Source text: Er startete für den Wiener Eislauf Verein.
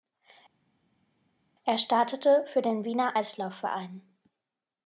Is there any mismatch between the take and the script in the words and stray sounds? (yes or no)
no